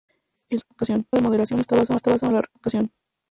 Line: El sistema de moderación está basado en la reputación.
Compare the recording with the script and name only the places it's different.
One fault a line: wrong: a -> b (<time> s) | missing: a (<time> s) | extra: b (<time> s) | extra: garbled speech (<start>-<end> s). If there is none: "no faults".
wrong: sistema -> reputación (0.6 s)
extra: está basado (1.9 s)